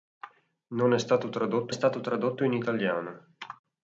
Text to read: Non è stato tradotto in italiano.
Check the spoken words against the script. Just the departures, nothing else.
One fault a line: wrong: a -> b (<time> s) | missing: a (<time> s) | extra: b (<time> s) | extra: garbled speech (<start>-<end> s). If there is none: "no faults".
extra: stato tradotto (1.7 s)